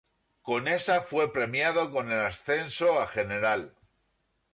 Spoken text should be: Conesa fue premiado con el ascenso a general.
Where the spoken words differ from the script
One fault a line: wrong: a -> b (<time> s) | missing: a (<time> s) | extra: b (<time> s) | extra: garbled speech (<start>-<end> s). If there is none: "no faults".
no faults